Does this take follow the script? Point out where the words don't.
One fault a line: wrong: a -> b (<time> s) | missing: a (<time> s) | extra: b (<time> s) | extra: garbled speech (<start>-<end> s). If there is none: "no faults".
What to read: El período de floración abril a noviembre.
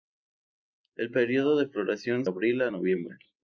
no faults